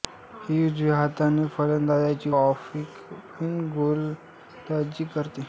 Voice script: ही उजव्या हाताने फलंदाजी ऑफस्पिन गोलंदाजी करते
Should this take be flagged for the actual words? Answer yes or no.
no